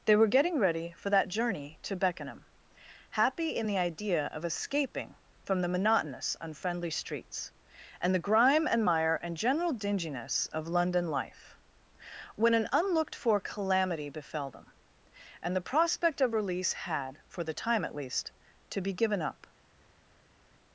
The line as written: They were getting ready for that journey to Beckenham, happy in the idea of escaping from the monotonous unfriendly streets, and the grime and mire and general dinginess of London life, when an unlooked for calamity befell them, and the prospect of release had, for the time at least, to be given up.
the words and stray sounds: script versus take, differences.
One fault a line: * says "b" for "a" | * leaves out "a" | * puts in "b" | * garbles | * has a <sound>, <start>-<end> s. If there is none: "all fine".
all fine